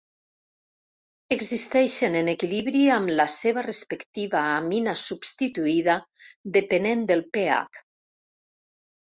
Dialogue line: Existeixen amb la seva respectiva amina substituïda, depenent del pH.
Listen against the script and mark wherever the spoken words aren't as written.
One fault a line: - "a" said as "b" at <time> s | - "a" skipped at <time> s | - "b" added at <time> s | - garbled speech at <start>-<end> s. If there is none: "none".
- "en equilibri" added at 2.2 s